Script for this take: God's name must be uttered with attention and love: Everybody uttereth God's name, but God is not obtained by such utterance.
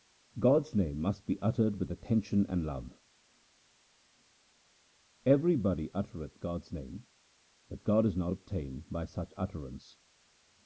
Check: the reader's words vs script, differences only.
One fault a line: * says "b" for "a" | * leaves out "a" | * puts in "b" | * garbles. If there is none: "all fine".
all fine